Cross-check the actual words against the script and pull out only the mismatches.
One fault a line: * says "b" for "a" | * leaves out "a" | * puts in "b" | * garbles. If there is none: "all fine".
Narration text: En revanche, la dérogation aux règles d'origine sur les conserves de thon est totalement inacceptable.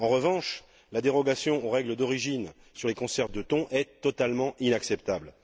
all fine